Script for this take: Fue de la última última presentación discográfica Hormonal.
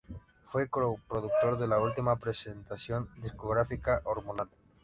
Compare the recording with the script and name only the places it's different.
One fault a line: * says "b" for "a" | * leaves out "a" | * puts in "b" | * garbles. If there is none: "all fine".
* puts in "co productor"
* leaves out "última"